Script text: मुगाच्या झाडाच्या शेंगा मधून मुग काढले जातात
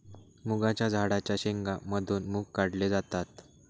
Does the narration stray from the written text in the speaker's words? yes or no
no